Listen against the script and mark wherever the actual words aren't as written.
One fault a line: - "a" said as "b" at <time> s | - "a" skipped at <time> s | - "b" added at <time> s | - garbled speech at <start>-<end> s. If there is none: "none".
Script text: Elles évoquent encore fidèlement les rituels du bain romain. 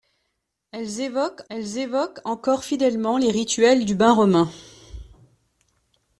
- "elles évoquent" added at 1.5 s